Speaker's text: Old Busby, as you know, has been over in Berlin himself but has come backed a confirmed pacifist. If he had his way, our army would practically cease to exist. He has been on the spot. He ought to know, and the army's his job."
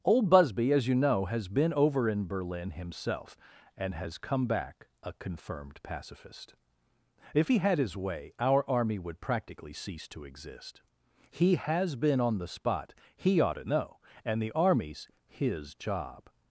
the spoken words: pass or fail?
fail